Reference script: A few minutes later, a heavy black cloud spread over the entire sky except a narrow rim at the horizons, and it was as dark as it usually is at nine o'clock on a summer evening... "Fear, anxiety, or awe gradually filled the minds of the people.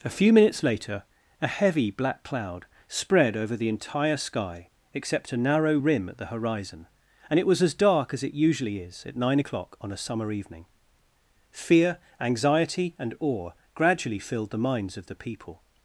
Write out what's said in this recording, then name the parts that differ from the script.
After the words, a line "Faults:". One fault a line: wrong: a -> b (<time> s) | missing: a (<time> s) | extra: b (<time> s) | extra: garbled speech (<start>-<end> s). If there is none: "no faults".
A few minutes later, a heavy black cloud spread over the entire sky except a narrow rim at the horizon, and it was as dark as it usually is at nine o'clock on a summer evening... "Fear, anxiety, and awe gradually filled the minds of the people.
Faults:
wrong: horizons -> horizon (6.3 s)
wrong: or -> and (13.0 s)